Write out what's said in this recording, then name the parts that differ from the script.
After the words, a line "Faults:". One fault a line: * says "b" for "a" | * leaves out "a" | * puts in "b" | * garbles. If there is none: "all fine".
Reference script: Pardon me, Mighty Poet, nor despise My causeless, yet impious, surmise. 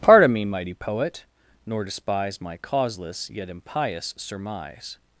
Pardon me, Mighty Poet, nor despise My causeless, yet impious, surmise.
Faults:
all fine